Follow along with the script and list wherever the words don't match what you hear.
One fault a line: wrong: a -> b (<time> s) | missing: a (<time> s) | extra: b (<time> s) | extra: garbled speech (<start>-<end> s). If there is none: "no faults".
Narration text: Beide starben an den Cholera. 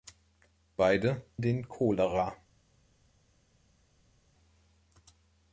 missing: starben an (1.2 s)